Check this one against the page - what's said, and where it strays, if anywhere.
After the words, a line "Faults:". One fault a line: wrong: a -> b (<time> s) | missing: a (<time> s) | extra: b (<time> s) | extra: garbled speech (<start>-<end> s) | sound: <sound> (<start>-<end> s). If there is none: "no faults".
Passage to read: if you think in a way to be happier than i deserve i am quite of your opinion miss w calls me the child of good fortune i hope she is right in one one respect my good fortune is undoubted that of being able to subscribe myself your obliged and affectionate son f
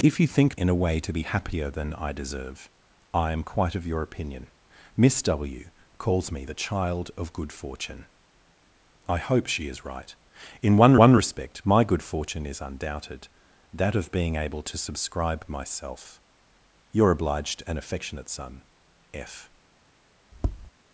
if you think in a way to be happier than i deserve i am quite of your opinion miss w calls me the child of good fortune i hope she is right in one one respect my good fortune is undoubted that of being able to subscribe myself your obliged and affectionate son f
Faults:
sound: tap (20.3-20.7 s)